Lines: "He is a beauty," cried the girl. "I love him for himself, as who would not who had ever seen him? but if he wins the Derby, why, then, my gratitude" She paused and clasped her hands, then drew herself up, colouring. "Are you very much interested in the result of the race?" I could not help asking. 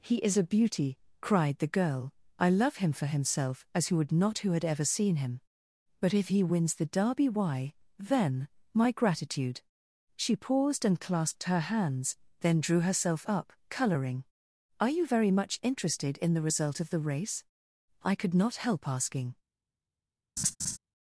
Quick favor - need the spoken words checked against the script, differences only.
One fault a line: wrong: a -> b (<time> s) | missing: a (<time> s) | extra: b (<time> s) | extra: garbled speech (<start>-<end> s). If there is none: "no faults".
no faults